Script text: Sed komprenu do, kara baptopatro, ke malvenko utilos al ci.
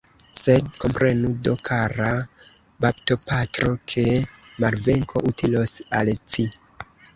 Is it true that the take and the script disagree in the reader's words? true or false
false